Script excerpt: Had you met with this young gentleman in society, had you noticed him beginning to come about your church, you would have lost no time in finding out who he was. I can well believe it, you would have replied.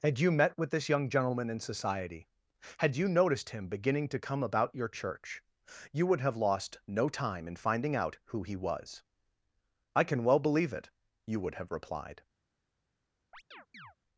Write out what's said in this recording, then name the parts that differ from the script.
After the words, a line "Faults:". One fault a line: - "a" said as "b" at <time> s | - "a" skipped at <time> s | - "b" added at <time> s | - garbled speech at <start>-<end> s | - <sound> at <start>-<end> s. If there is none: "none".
Had you met with this young gentleman in society, had you noticed him beginning to come about your church, you would have lost no time in finding out who he was. I can well believe it, you would have replied.
Faults:
- chirp at 13.3-14.0 s